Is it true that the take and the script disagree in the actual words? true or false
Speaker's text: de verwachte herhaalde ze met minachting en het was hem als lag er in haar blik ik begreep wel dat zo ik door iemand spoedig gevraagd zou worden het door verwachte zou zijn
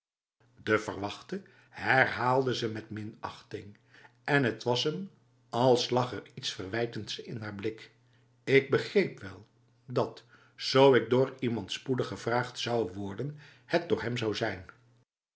true